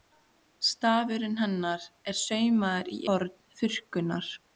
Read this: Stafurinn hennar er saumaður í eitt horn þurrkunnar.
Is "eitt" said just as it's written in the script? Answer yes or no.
no